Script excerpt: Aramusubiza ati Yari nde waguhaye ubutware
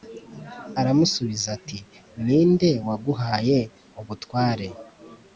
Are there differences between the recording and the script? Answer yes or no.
yes